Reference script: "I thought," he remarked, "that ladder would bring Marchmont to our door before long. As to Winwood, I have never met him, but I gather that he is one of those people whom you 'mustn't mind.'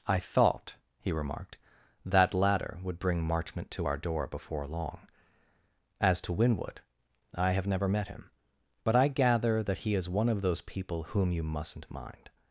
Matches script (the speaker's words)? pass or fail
pass